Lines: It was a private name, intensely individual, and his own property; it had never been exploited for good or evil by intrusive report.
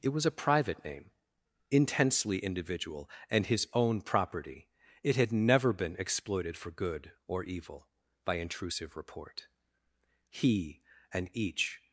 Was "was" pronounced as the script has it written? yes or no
yes